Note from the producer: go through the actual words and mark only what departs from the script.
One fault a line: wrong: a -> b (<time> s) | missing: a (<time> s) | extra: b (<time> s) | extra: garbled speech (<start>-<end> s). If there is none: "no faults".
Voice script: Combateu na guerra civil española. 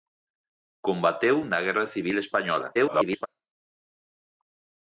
extra: garbled speech (2.7-3.3 s)